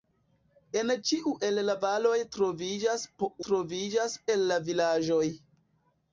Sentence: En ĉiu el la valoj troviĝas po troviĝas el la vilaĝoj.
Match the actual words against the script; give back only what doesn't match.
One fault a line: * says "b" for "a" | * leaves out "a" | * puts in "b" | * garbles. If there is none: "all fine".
all fine